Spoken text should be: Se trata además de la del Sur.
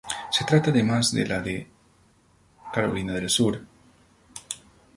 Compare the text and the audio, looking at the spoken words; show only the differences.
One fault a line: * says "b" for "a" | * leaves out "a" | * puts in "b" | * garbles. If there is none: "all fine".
* puts in "de Carolina"